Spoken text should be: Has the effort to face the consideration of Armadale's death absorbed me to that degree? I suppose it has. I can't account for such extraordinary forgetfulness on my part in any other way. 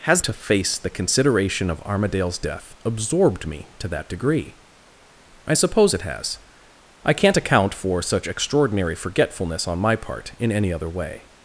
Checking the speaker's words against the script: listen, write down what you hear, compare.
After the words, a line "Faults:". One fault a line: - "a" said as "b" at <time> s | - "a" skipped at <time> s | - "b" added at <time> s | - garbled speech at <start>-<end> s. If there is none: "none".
Has to face the consideration of Armadale's death absorbed me to that degree? I suppose it has. I can't account for such extraordinary forgetfulness on my part in any other way.
Faults:
- "the effort" skipped at 0.2 s